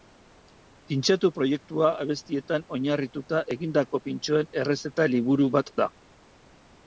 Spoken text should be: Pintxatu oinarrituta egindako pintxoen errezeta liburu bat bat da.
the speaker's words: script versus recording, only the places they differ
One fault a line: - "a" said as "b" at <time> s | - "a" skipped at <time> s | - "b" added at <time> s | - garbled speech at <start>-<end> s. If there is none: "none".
- "proiektua abestietan" added at 1.4 s
- "bat" skipped at 5.7 s